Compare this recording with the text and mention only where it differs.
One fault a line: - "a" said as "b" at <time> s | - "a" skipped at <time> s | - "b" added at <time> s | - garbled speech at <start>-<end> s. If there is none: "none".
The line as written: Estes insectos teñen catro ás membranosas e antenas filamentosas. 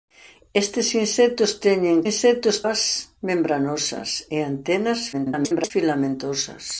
- "catro" said as "insectos" at 2.1 s
- garbled speech at 5.1-5.7 s